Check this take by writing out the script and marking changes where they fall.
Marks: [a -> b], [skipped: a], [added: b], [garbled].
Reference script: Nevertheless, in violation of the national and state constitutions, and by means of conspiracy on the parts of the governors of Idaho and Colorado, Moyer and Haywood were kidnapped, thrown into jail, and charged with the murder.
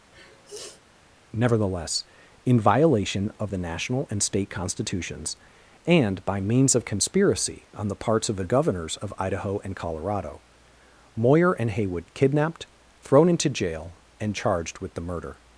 Nevertheless, in violation of the national and state constitutions, and by means of conspiracy on the parts of the governors of Idaho and Colorado, Moyer and Haywood [skipped: were] kidnapped, thrown into jail, and charged with the murder.